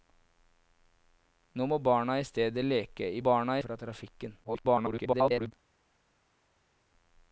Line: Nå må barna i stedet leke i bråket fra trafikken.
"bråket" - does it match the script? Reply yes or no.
no